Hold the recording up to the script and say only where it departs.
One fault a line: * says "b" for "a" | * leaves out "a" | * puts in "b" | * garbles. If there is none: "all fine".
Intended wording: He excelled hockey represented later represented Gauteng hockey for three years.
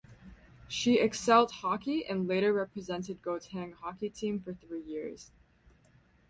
* says "She" for "He"
* says "and" for "represented"
* puts in "team"